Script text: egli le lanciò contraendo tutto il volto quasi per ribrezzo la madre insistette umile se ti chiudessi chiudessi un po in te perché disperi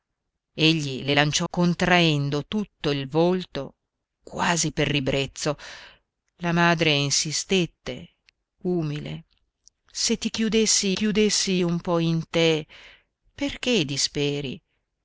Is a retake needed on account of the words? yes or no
no